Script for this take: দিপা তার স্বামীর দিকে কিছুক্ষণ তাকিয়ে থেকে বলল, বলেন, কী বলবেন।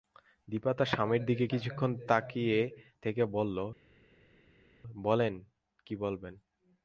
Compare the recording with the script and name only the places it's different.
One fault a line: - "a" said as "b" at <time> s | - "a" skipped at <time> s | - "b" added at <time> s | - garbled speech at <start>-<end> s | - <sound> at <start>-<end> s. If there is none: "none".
none